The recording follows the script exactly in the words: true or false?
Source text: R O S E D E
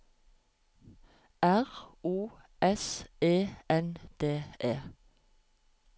false